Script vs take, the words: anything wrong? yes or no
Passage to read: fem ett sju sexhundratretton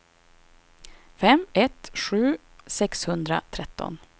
no